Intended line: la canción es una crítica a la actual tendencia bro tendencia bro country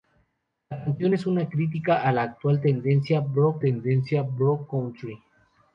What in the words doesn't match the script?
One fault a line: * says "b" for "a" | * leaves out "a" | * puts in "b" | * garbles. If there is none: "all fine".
all fine